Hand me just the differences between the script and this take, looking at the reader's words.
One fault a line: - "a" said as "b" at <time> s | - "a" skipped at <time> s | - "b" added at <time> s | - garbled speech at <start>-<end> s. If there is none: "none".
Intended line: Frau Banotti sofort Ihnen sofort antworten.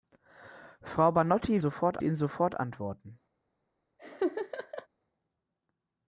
none